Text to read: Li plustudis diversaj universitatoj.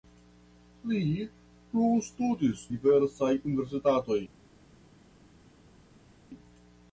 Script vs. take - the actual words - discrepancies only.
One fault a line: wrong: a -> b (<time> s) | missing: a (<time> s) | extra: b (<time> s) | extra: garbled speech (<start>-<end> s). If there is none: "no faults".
no faults